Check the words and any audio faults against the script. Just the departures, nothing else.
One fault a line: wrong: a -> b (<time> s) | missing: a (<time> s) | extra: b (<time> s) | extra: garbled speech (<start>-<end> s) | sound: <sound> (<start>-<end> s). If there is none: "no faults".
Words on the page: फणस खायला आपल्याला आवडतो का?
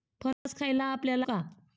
sound: dropout (0.3-0.5 s)
missing: आवडतो (1.3 s)